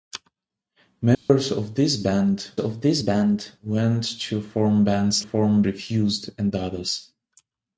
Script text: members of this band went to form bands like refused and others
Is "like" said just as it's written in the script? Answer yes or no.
no